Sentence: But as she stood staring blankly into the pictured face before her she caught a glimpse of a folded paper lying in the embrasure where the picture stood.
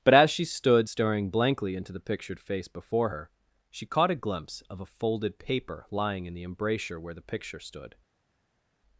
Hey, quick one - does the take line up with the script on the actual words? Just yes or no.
yes